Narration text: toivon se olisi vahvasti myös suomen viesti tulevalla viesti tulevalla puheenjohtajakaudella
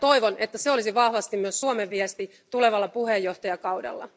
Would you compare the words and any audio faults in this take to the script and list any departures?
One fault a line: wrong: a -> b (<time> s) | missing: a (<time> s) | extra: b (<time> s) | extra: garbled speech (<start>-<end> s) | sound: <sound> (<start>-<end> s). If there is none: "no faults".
extra: että (0.4 s)
missing: viesti tulevalla (2.9 s)